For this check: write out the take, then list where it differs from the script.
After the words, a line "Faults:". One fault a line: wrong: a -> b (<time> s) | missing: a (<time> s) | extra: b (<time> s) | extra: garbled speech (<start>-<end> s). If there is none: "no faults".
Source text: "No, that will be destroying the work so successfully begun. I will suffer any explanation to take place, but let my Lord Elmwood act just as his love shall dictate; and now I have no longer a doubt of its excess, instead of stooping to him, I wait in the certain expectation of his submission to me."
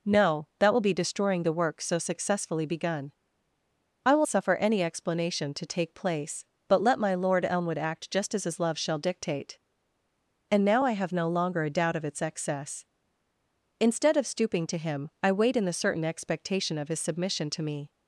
"No, that will be destroying the work so successfully begun. I will suffer any explanation to take place, but let my Lord Elmwood act just as his love shall dictate; and now I have no longer a doubt of its excess, instead of stooping to him, I wait in the certain expectation of his submission to me."
Faults:
no faults